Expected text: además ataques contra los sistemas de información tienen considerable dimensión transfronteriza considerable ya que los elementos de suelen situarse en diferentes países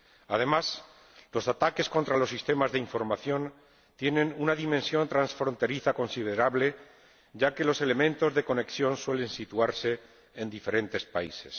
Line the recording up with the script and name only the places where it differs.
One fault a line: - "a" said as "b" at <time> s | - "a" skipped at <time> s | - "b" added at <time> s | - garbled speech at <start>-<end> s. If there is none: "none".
- "los" added at 1.3 s
- "considerable" said as "una" at 4.4 s
- "conexión" added at 8.4 s